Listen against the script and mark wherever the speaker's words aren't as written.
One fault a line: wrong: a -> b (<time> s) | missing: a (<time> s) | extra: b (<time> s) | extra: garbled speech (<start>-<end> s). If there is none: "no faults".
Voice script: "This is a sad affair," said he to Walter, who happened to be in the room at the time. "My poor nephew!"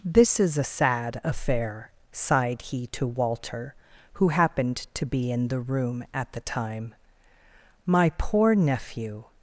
wrong: said -> sighed (2.1 s)